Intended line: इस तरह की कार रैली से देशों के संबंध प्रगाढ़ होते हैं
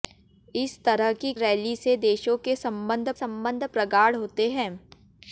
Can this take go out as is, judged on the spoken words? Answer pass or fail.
fail